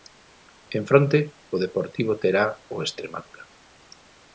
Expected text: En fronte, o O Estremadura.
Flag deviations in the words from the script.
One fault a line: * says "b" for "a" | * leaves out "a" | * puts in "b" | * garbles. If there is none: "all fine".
* puts in "Deportivo terá"